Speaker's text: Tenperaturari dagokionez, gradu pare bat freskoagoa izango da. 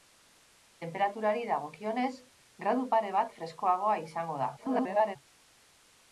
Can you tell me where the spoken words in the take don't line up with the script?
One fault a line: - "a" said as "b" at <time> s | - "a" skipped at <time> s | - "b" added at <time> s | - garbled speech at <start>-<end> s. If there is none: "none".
- garbled speech at 4.6-5.2 s